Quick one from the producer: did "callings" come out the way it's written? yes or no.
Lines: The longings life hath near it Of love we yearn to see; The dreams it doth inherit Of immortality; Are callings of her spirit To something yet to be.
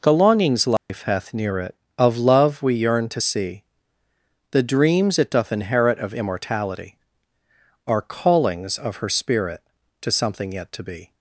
yes